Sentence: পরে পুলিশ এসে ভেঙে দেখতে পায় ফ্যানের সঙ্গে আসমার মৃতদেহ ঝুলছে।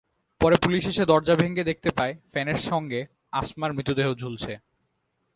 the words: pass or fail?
fail